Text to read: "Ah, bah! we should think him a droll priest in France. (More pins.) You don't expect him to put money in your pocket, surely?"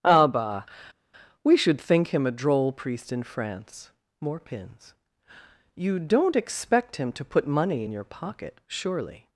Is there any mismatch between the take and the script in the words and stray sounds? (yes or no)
no